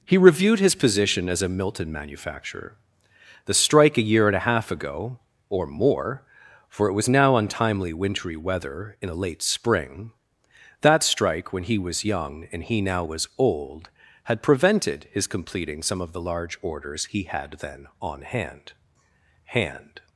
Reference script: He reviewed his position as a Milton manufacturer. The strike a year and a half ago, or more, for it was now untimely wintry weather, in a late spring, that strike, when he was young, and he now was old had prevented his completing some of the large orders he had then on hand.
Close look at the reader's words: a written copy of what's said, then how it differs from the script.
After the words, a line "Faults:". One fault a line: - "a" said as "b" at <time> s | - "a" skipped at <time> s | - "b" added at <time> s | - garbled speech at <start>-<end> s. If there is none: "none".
He reviewed his position as a Milton manufacturer. The strike a year and a half ago, or more, for it was now untimely wintry weather, in a late spring, that strike, when he was young, and he now was old had prevented his completing some of the large orders he had then on hand hand.
Faults:
- "hand" added at 19.4 s